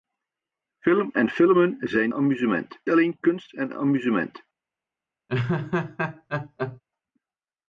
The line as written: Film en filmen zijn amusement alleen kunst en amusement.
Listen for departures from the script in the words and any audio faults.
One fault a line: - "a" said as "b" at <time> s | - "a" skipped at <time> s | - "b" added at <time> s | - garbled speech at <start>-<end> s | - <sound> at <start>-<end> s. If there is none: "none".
- laugh at 5.3-6.8 s